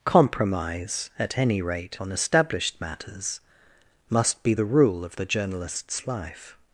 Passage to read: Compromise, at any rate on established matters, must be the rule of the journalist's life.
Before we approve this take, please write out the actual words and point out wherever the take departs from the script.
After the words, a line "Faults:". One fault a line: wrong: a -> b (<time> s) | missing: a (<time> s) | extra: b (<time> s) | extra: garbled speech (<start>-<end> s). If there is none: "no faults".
Compromise, at any rate on established matters, must be the rule of the journalist's life.
Faults:
no faults